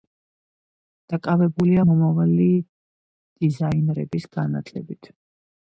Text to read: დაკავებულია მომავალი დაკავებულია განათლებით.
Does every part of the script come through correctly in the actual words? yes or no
no